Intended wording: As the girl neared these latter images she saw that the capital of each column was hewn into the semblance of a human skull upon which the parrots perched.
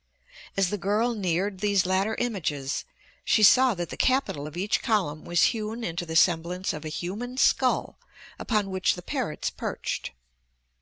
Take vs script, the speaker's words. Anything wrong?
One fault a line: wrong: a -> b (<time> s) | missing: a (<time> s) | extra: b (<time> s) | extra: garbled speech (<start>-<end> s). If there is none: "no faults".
no faults